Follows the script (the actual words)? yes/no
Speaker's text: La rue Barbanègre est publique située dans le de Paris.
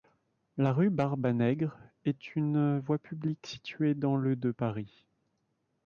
no